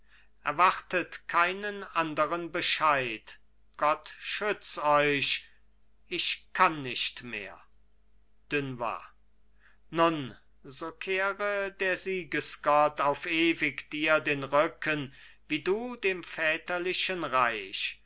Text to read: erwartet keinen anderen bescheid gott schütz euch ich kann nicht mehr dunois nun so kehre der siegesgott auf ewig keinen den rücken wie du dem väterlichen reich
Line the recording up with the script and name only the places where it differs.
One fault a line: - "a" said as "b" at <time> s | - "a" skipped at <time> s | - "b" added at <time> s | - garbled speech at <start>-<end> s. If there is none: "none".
- "keinen" said as "dir" at 13.9 s